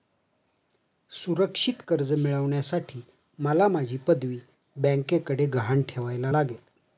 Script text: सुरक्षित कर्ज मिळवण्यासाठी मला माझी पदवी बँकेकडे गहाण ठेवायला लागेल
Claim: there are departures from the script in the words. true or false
false